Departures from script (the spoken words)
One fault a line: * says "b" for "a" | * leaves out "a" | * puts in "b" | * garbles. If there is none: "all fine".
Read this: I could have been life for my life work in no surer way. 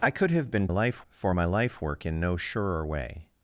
all fine